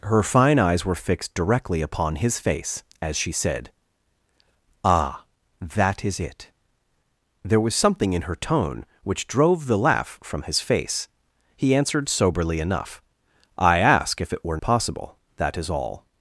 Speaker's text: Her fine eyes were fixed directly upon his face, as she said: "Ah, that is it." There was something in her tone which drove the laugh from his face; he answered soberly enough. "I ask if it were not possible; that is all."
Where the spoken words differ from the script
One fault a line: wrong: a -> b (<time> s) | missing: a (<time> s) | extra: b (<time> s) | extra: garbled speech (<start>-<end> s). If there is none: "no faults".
missing: not (14.6 s)